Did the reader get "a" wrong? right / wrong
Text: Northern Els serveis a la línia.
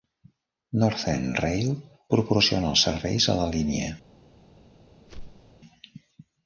right